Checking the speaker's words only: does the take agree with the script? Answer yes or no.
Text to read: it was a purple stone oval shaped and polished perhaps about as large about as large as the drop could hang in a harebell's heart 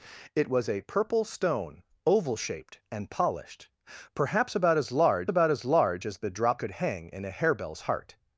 yes